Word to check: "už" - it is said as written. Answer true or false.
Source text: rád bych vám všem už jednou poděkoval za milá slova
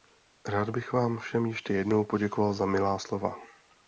false